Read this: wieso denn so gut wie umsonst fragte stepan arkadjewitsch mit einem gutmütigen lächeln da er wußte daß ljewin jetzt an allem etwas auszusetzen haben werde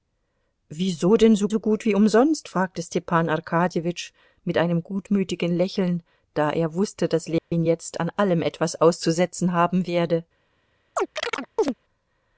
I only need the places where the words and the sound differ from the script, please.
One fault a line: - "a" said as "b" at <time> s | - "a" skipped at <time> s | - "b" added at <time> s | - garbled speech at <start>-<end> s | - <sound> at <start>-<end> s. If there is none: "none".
- "so" added at 1.5 s
- dropout at 7.4-7.5 s
- chirp at 11.0-11.7 s